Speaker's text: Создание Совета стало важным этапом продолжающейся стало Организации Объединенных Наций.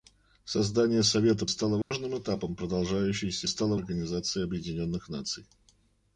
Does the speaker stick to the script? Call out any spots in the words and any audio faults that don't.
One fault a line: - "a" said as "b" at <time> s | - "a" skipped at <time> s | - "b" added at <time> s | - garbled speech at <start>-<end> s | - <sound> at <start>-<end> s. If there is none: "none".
- dropout at 1.8-1.9 s